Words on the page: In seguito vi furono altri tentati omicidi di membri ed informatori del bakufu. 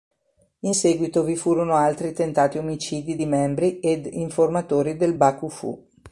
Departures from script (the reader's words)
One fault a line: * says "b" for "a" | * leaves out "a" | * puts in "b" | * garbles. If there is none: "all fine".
all fine